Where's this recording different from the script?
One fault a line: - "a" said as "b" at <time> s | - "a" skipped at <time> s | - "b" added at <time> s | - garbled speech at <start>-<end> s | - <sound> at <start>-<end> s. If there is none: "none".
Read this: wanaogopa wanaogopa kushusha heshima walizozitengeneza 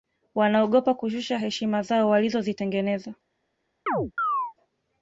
- "wanaogopa" skipped at 0.9 s
- "zao" added at 1.8 s
- chirp at 3.9-4.5 s